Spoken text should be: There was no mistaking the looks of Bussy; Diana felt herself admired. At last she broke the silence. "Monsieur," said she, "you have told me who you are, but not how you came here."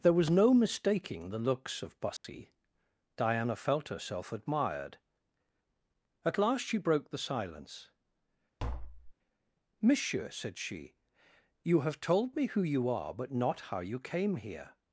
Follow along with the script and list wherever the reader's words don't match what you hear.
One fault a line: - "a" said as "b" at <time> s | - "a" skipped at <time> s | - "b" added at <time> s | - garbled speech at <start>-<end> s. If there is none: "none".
none